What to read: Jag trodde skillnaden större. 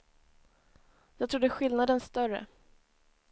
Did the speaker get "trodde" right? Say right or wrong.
right